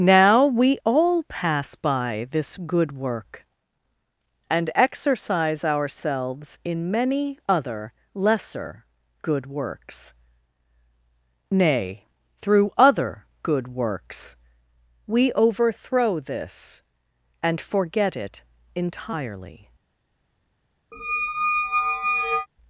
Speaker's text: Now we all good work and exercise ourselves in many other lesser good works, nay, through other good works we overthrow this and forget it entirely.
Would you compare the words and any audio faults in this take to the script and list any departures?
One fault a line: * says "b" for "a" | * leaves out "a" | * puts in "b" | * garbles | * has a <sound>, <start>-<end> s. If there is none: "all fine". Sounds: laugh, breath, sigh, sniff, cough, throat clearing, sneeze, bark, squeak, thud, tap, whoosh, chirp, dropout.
* puts in "pass by this"
* has a squeak, 20.9-22.5 s